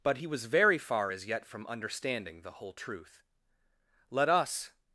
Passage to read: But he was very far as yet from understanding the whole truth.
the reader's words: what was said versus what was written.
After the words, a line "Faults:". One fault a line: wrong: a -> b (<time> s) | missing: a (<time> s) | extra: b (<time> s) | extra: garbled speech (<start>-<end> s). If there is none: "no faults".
But he was very far as yet from understanding the whole truth. Let us
Faults:
extra: Let us (4.1 s)